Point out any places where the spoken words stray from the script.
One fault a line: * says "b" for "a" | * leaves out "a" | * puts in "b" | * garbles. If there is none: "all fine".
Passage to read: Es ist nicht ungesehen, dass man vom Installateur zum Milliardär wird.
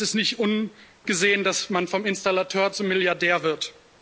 all fine